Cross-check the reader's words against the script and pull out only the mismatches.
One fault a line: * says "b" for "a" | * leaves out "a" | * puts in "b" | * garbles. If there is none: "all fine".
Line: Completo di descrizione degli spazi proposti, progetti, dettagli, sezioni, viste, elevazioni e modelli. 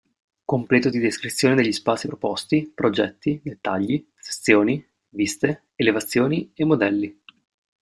all fine